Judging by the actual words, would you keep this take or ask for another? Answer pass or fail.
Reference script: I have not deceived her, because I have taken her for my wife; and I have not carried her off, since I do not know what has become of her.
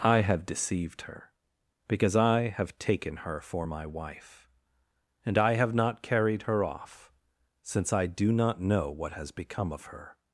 fail